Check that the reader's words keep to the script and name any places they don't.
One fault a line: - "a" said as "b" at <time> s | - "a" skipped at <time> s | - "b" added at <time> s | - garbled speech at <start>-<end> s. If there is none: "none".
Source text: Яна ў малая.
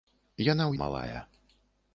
none